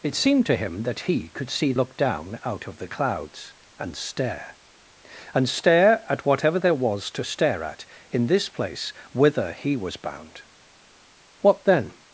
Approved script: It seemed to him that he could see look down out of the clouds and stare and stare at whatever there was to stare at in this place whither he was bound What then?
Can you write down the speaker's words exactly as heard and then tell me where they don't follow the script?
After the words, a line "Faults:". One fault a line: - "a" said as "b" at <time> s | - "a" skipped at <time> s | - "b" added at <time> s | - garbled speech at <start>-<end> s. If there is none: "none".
It seemed to him that he could see look down out of the clouds and stare and stare at whatever there was to stare at in this place whither he was bound What then?
Faults:
none